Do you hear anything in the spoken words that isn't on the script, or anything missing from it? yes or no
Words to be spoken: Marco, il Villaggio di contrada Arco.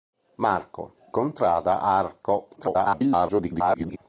yes